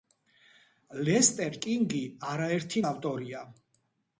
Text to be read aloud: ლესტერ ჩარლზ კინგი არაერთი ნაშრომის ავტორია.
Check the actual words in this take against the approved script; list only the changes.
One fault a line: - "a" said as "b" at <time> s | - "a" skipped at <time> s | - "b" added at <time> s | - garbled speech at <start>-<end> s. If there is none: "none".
- "ჩარლზ" skipped at 1.6 s
- "ნაშრომის" skipped at 2.8 s